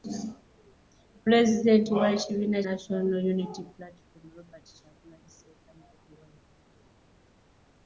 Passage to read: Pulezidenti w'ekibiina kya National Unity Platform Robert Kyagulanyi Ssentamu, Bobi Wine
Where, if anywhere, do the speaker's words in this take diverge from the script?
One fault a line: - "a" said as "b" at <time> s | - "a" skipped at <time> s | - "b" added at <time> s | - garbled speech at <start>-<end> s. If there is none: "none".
- "kya" skipped at 2.6 s